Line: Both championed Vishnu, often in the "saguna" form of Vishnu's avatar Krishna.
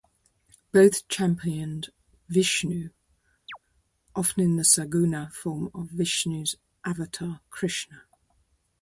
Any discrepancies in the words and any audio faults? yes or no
yes